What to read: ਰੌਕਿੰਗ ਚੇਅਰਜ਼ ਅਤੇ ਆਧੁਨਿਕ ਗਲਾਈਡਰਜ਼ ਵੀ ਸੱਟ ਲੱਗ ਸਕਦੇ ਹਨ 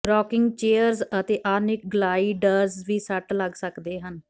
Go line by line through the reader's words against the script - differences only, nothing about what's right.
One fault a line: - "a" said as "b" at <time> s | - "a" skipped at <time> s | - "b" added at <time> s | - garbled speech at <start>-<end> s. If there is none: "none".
none